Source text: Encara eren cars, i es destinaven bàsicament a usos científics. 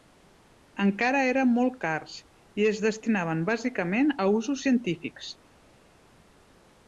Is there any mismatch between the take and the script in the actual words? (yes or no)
yes